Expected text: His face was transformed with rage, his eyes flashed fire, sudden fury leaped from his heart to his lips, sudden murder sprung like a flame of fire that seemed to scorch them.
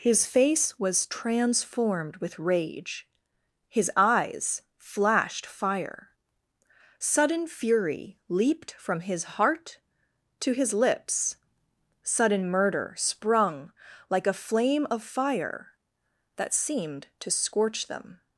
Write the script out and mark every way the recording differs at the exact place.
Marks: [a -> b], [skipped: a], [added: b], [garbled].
His face was transformed with rage, his eyes flashed fire, sudden fury leaped from his heart to his lips, sudden murder sprung like a flame of fire that seemed to scorch them.